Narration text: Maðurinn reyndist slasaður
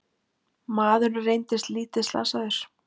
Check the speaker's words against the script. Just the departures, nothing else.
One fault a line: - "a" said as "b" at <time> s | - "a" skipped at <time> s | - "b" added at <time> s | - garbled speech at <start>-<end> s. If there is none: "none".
- "lítið" added at 1.8 s